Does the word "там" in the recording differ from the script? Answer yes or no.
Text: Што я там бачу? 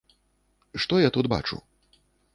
yes